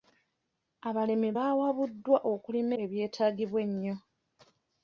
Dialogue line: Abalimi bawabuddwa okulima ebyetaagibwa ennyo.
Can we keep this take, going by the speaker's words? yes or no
yes